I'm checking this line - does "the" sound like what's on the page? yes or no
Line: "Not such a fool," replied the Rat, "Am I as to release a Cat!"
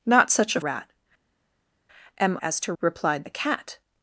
no